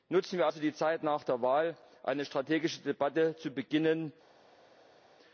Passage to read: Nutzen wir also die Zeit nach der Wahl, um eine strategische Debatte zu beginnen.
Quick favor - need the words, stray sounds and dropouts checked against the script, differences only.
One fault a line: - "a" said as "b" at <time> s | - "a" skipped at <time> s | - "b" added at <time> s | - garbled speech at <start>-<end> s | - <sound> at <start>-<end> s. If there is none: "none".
none